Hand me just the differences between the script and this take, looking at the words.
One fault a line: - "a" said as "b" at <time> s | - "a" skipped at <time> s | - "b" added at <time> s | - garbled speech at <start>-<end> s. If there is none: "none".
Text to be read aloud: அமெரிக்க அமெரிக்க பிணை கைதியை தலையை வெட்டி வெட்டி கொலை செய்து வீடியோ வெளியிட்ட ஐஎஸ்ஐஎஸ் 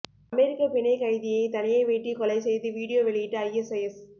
- "அமெரிக்க" skipped at 0.7 s
- "வெட்டி" skipped at 2.1 s